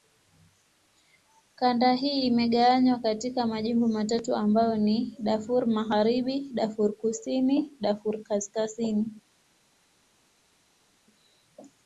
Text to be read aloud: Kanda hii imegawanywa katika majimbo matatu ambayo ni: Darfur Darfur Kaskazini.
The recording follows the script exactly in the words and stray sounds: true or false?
false